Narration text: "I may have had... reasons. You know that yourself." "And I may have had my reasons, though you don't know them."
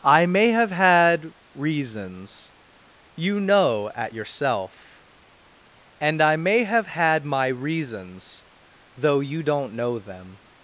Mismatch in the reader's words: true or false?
true